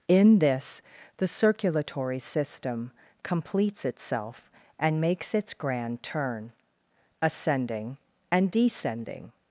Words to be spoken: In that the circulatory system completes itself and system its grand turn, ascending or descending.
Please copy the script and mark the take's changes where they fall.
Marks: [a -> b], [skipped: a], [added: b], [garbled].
In [that -> this] the circulatory system completes itself and [system -> makes] its grand turn, ascending [or -> and] descending.